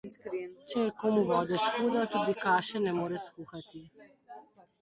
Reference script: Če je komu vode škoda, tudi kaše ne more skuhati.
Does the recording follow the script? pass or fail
pass